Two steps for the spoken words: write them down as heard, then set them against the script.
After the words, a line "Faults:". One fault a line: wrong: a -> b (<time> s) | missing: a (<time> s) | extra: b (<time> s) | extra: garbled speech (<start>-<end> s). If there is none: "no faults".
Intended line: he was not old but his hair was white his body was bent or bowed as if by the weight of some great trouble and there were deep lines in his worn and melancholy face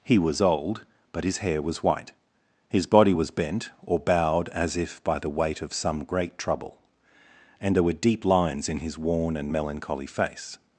he was old but his hair was white his body was bent or bowed as if by the weight of some great trouble and there were deep lines in his worn and melancholy face
Faults:
missing: not (0.4 s)